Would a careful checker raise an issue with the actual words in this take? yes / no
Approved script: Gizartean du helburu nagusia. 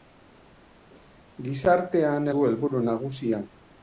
no